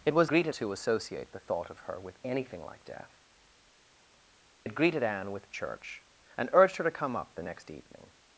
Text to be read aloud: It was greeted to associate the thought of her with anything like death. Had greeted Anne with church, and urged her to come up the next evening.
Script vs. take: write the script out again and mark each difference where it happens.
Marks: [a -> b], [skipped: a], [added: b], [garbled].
It was greeted to associate the thought of her with anything like death. Had greeted Anne with church, and urged her to come up the next evening.